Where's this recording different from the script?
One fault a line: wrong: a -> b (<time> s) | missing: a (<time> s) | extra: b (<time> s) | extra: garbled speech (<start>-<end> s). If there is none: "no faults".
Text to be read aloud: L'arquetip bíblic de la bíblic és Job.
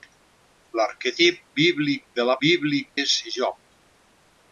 no faults